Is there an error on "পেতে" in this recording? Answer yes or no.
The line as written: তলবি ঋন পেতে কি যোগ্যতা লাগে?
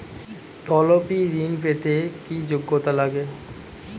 no